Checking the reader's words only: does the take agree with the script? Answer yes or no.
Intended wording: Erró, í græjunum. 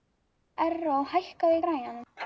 no